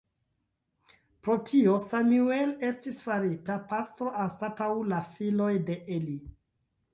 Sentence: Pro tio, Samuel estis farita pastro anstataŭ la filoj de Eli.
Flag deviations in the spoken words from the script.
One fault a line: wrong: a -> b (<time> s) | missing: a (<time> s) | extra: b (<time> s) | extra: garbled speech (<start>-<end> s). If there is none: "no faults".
no faults